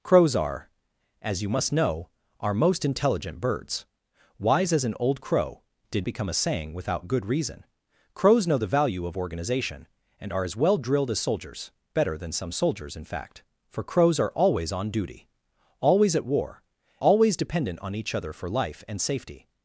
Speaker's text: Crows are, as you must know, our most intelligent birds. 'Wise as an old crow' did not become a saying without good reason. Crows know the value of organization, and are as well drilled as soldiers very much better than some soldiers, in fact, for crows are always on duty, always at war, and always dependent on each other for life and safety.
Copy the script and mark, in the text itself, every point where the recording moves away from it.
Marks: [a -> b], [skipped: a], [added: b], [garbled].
Crows are, as you must know, our most intelligent birds. 'Wise as an old crow' did [skipped: not] become a saying without good reason. Crows know the value of organization, and are as well drilled as soldiers [skipped: very much] better than some soldiers, in fact, for crows are always on duty, always at war, [skipped: and] always dependent on each other for life and safety.